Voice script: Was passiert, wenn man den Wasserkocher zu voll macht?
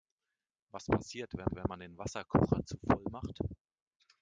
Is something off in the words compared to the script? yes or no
yes